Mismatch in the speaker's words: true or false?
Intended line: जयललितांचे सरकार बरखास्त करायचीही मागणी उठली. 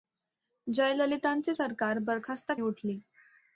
true